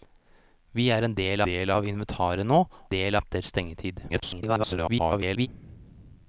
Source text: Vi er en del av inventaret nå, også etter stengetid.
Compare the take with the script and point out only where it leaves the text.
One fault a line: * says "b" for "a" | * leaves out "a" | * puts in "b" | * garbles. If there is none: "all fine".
* puts in "del"
* says "del" for "også"
* garbles